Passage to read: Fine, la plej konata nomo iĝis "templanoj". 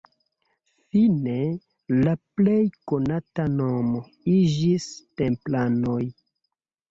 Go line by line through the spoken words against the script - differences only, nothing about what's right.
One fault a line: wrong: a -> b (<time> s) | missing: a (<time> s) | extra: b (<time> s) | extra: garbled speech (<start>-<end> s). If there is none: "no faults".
no faults